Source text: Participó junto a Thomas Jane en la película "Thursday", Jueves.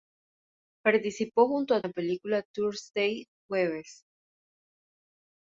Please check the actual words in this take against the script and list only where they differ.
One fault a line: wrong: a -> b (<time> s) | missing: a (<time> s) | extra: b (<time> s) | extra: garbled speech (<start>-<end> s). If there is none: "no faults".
missing: Thomas Jane en (1.8 s)